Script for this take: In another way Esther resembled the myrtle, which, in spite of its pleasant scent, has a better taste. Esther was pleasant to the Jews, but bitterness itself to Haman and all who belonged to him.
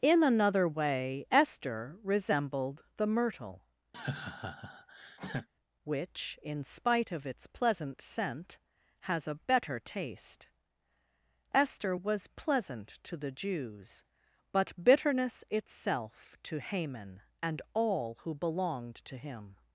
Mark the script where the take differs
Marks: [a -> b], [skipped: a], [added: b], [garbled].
In another way Esther resembled the myrtle, which, in spite of its pleasant scent, has a better taste. Esther was pleasant to the Jews, but bitterness itself to Haman and all who belonged to him.